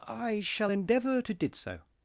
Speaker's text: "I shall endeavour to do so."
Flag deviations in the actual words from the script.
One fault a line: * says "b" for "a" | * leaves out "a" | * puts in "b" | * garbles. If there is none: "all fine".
* says "did" for "do"